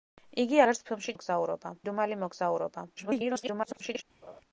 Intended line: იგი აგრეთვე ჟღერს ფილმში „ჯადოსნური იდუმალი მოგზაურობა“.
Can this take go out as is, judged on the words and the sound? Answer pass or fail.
fail